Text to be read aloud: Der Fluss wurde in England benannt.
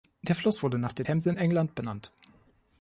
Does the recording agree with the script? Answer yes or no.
no